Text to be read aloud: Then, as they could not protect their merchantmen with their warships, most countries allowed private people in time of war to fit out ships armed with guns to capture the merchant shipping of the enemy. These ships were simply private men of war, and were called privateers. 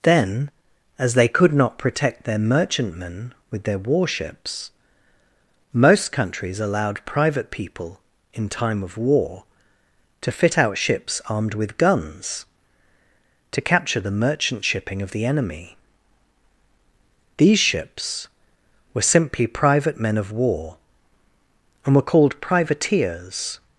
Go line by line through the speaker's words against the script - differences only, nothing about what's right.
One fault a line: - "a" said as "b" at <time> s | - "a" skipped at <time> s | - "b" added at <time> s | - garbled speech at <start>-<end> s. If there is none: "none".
none